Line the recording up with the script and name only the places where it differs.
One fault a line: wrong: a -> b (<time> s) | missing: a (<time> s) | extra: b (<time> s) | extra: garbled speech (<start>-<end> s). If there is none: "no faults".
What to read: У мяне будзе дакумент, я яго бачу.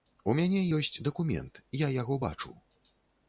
wrong: будзе -> ёсць (0.8 s)